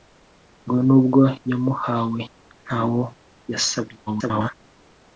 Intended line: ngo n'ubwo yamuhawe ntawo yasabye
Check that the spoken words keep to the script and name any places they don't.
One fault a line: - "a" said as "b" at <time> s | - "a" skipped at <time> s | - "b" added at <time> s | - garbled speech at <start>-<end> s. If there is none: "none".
- garbled speech at 4.1-4.6 s